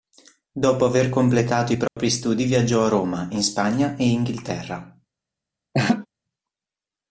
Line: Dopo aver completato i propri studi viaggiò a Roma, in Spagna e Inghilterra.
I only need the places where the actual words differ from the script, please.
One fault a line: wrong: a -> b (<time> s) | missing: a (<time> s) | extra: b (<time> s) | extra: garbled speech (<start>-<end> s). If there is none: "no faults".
no faults